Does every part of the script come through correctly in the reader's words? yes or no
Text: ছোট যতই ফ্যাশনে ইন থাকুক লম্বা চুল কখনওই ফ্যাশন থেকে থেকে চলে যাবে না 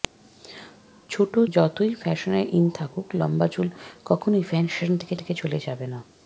yes